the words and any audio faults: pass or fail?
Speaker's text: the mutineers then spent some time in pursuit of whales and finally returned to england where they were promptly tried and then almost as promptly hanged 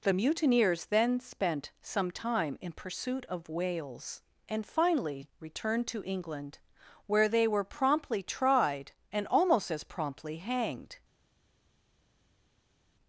fail